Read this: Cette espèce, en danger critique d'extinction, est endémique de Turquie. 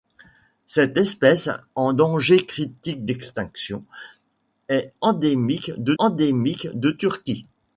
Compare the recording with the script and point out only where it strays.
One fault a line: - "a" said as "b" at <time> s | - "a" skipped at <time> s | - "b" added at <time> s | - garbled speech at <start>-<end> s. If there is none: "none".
- "endémique de" added at 6.0 s